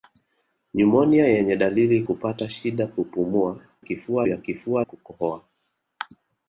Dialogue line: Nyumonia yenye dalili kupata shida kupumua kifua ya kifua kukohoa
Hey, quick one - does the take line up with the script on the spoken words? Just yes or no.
yes